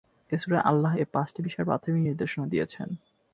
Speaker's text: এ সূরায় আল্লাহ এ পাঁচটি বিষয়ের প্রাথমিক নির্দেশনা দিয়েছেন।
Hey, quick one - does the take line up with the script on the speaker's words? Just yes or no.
yes